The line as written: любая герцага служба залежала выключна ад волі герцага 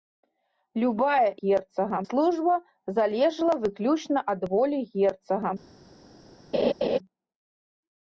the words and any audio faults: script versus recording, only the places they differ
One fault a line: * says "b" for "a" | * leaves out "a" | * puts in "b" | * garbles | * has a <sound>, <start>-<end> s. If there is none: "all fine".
* has a laugh, 6.5-7.0 s